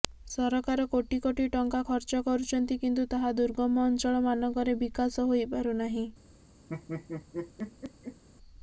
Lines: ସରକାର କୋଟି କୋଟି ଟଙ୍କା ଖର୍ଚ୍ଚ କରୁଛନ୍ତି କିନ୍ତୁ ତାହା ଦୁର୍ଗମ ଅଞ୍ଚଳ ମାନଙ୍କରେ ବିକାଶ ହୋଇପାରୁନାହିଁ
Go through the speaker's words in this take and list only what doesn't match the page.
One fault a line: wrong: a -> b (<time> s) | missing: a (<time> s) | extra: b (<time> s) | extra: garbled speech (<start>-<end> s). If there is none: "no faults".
no faults